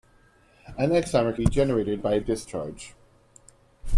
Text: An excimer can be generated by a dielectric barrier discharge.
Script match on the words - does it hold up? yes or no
no